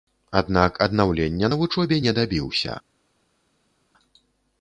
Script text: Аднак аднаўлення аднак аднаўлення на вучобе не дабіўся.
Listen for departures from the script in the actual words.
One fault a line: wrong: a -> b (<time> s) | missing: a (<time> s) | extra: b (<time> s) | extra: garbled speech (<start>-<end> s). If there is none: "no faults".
missing: аднак аднаўлення (1.5 s)